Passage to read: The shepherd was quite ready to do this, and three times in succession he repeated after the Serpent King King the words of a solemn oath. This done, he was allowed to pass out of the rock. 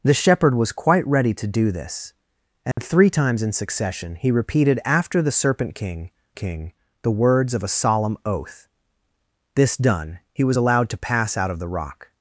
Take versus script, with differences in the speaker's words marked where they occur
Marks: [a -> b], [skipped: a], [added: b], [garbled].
The shepherd was quite ready to do this, and three times in succession he repeated after the Serpent King King the words of a solemn oath. This done, he was allowed to pass out of the rock.